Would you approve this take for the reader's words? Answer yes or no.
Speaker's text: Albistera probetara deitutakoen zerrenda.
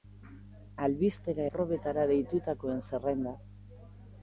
yes